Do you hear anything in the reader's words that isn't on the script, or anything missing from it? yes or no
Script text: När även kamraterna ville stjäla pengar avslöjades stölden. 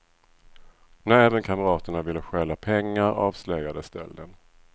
no